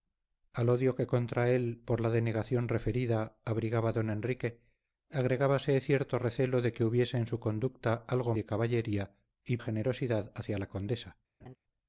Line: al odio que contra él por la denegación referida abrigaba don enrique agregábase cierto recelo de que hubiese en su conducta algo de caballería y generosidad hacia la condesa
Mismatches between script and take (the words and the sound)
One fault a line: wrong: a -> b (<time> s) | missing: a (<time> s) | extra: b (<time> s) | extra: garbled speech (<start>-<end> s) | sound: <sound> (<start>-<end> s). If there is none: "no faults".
sound: laugh (11.4-11.6 s)